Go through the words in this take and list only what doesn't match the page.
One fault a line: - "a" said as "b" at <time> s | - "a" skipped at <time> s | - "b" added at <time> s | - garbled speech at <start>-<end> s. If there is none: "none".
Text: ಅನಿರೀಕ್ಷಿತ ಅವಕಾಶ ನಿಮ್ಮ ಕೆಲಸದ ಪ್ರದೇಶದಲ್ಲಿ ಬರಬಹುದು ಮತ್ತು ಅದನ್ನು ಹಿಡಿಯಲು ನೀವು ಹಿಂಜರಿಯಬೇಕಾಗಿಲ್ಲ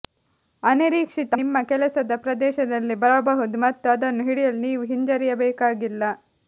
- "ಅವಕಾಶ" skipped at 1.3 s